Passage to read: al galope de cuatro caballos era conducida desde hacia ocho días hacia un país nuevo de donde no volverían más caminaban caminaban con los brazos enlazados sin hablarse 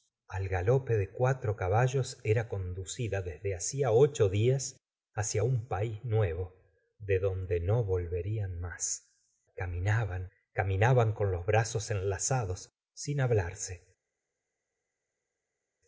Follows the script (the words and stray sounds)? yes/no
yes